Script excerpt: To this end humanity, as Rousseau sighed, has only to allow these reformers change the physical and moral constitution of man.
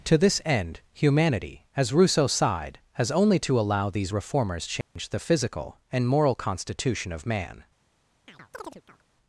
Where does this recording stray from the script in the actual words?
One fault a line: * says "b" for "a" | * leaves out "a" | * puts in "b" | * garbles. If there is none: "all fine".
all fine